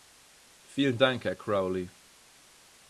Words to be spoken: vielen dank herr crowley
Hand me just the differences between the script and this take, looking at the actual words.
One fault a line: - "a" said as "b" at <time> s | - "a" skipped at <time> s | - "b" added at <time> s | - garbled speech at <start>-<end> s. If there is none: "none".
none